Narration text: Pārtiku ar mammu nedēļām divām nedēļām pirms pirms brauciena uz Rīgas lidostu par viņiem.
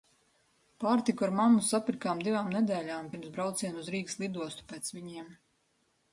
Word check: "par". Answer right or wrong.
wrong